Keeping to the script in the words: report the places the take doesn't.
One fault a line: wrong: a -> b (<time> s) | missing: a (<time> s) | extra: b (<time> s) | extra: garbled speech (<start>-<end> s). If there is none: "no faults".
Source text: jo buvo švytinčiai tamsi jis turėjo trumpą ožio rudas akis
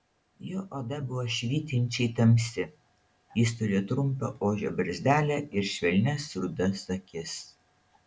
extra: oda (0.8 s)
extra: barzdelę ir švelnias (4.8 s)